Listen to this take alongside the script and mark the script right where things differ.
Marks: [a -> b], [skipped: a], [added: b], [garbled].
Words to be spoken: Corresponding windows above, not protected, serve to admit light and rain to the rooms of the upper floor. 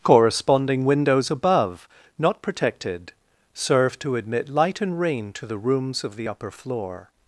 Corresponding windows above, not protected, serve to admit light and rain to the rooms of the upper floor.